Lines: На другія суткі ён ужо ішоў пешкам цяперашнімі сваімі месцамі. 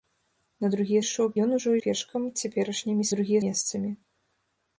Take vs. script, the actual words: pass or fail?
fail